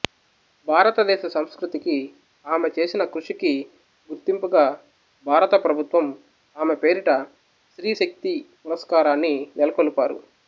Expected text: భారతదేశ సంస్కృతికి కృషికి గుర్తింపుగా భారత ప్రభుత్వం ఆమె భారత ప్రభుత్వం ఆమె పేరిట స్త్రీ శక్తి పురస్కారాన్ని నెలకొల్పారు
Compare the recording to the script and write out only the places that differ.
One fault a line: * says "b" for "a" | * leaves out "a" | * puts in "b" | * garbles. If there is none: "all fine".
* puts in "ఆమె చేసిన"
* leaves out "భారత ప్రభుత్వం ఆమె"